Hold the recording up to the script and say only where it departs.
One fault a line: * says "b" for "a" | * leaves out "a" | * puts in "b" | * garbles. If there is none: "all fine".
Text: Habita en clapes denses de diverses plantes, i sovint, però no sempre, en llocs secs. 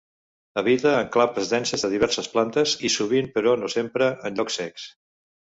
all fine